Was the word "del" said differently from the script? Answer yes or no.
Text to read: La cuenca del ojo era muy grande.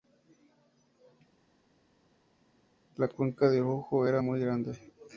no